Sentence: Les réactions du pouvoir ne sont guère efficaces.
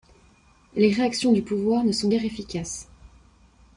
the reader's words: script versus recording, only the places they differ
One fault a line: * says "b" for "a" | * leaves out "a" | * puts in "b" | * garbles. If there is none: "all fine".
all fine